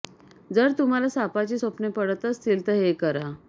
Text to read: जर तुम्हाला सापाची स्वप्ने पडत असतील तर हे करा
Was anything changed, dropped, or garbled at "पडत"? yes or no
no